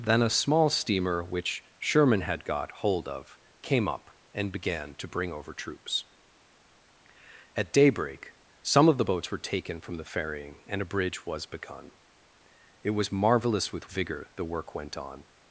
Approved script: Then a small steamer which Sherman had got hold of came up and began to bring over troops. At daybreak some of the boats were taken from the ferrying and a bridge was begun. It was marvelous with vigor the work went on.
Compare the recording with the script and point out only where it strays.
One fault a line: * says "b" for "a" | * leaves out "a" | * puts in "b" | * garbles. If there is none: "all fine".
all fine